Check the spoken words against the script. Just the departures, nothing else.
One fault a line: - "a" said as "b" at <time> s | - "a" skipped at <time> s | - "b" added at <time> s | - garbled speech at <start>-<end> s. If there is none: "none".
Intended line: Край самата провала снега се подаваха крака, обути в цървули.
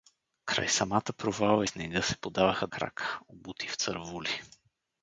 none